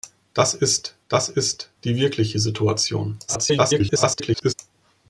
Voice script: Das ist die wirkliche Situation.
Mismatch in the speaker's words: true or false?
true